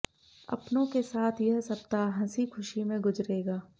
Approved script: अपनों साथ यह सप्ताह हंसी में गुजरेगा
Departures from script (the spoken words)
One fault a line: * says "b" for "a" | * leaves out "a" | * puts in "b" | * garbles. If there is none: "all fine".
* puts in "के"
* puts in "खुशी"